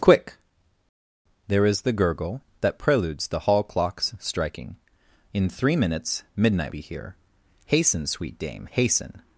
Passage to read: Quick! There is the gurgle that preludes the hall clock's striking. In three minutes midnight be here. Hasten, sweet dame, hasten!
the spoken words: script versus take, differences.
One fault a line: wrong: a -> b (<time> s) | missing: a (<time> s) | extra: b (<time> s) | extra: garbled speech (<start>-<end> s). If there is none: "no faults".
no faults